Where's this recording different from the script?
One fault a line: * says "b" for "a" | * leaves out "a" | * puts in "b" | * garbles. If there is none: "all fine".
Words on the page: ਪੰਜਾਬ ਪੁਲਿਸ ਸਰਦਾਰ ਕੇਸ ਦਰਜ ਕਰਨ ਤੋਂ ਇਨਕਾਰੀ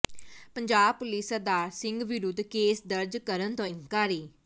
* puts in "ਸਿੰਘ ਵਿਰੁੱਧ"